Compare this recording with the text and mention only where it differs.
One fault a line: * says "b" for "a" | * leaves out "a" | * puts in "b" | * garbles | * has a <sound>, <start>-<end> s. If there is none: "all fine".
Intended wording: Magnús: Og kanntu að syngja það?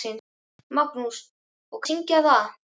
* leaves out "kanntu"